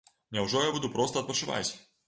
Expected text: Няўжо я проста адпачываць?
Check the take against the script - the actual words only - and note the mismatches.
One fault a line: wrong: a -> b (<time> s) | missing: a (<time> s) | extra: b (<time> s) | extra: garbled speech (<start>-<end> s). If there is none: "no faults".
extra: буду (0.7 s)